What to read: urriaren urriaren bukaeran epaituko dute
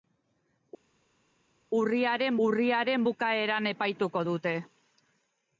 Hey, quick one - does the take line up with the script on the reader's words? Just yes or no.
yes